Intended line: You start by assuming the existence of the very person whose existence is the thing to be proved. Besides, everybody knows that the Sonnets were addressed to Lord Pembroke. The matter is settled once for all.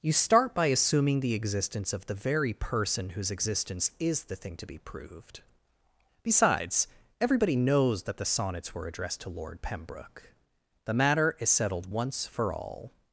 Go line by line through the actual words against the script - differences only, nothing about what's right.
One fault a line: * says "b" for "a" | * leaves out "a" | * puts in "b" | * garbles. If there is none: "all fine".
all fine